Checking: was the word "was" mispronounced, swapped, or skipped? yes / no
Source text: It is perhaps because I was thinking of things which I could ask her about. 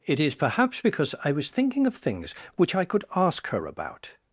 no